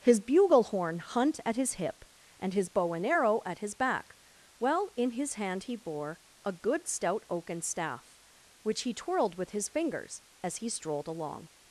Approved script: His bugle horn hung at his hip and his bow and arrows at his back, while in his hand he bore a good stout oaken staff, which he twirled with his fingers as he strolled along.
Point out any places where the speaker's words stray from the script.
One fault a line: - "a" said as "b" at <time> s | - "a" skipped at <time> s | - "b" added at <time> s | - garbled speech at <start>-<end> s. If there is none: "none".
- "hung" said as "hunt" at 1.0 s
- "arrows" said as "arrow" at 3.0 s